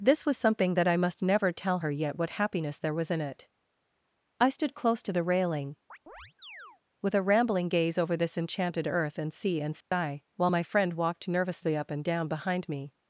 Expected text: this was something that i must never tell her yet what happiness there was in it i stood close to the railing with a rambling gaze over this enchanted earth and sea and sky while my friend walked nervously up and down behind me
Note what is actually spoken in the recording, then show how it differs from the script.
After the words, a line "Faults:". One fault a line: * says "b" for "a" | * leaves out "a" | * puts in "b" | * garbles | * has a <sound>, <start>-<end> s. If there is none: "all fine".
this was something that i must never tell her yet what happiness there was in it i stood close to the railing with a rambling gaze over this enchanted earth and sea and sky while my friend walked nervously up and down behind me
Faults:
* has a chirp, 5.9-6.8 s
* has a dropout, 9.8-9.9 s